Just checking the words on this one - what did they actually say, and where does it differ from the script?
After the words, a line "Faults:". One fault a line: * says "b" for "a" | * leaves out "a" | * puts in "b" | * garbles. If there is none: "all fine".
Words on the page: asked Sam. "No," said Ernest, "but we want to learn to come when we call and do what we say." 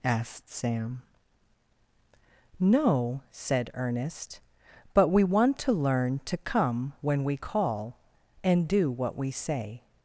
asked Sam. "No," said Ernest, "but we want to learn to come when we call and do what we say."
Faults:
all fine